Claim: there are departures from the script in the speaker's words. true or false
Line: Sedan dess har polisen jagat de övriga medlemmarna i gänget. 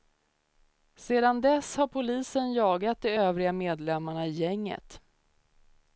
false